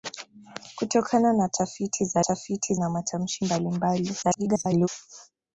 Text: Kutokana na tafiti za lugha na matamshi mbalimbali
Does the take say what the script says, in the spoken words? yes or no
no